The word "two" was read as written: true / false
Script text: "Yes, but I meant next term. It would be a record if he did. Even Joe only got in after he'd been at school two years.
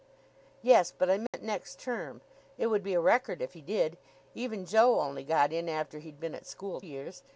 false